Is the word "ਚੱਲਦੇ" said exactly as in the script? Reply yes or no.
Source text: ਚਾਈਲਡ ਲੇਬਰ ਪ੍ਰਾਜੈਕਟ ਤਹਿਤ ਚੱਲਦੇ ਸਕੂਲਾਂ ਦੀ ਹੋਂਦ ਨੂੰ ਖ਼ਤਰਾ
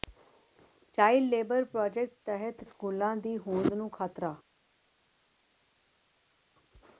no